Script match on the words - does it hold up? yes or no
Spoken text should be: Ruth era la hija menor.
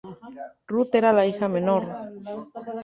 yes